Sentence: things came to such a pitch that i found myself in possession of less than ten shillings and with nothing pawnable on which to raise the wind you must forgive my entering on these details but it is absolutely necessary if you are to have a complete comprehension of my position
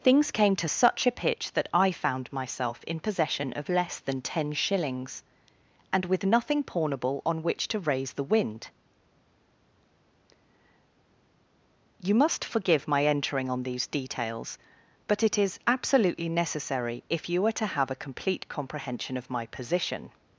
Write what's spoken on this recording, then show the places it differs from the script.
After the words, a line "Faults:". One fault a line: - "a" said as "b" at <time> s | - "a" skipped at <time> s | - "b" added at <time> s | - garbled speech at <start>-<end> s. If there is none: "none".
things came to such a pitch that i found myself in possession of less than ten shillings and with nothing pawnable on which to raise the wind you must forgive my entering on these details but it is absolutely necessary if you are to have a complete comprehension of my position
Faults:
none